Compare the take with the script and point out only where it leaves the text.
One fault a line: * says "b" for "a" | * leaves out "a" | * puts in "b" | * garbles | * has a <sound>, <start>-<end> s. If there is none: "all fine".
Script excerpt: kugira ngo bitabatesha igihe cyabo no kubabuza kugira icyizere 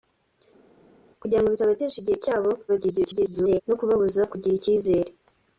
* garbles